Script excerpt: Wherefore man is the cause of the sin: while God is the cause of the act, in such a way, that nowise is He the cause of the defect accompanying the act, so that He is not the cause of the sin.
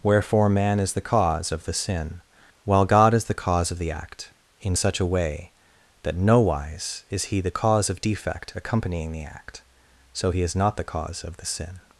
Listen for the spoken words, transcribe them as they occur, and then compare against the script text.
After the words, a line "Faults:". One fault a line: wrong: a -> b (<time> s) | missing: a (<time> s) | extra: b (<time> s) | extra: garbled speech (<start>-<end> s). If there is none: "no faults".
Wherefore man is the cause of the sin: while God is the cause of the act, in such a way, that nowise is He the cause of defect accompanying the act, so He is not the cause of the sin.
Faults:
missing: the (8.0 s)
missing: that (10.3 s)